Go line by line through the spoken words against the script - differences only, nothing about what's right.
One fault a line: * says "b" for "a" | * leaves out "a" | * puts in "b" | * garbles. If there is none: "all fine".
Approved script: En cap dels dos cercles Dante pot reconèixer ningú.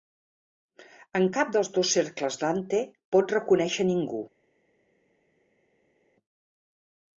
all fine